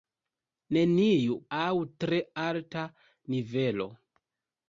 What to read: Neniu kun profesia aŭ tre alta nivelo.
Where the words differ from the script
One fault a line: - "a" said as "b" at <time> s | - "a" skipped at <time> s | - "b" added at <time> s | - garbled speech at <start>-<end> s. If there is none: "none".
- "kun profesia" skipped at 1.4 s